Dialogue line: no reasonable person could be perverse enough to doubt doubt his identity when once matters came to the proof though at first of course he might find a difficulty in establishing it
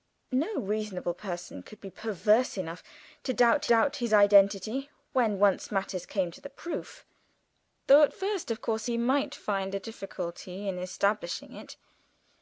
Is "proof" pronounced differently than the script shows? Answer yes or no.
no